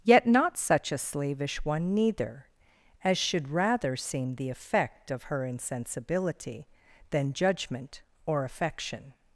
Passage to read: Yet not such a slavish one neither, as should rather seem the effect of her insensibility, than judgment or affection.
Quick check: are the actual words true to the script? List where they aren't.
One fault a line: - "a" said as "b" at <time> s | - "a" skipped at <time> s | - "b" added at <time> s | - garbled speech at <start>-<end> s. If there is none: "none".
none